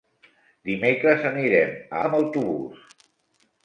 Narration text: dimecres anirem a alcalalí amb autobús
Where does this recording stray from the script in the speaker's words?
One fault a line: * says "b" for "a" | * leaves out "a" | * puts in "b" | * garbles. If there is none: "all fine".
* leaves out "alcalalí"